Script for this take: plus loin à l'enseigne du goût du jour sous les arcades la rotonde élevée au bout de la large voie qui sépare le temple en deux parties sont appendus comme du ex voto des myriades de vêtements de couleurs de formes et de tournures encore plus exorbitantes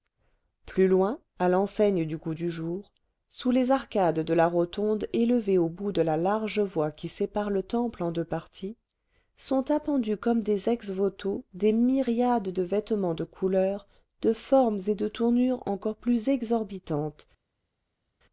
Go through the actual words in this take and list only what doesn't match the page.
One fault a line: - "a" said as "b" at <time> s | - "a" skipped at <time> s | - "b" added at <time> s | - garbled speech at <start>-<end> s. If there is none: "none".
- "de" added at 4.2 s
- "du" said as "des" at 10.4 s